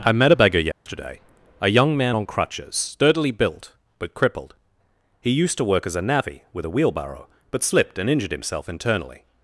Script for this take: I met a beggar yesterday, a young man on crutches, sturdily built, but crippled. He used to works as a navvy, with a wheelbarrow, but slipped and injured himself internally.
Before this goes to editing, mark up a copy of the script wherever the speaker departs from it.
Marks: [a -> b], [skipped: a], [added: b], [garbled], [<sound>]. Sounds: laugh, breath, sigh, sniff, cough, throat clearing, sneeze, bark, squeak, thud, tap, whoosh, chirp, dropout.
I met a beggar yesterday, [dropout] a young man on crutches, sturdily built, but crippled. He used to [works -> work] as a navvy, with a wheelbarrow, but slipped and injured himself internally.